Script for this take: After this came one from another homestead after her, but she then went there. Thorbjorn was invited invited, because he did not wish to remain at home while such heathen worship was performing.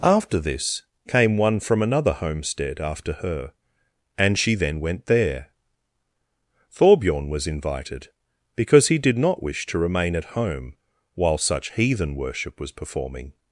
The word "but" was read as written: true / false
false